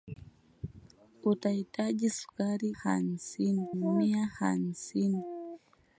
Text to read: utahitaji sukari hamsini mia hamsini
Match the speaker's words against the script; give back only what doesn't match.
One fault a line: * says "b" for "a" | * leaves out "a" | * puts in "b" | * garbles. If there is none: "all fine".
all fine